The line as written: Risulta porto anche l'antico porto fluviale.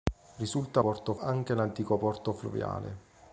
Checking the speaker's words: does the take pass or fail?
pass